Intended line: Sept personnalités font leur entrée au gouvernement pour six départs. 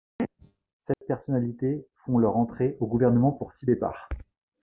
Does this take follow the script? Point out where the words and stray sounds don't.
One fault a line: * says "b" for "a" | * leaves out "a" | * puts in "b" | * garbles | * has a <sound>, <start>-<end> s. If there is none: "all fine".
* has a dropout, 0.9-1.0 s